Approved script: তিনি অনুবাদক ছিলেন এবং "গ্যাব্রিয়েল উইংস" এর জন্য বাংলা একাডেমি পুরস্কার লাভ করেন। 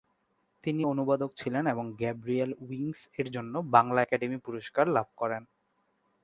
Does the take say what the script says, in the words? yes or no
yes